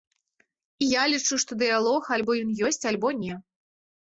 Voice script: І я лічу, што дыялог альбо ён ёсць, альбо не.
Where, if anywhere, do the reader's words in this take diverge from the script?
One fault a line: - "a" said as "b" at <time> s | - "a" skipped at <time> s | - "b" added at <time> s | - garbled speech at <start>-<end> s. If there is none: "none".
none